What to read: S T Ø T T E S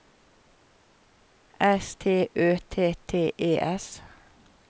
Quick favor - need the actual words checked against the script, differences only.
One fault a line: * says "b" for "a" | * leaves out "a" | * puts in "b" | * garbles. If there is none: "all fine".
all fine